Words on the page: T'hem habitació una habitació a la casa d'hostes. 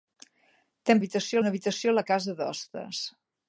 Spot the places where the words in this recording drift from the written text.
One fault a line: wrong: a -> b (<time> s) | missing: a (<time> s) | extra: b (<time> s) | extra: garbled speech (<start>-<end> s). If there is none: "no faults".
no faults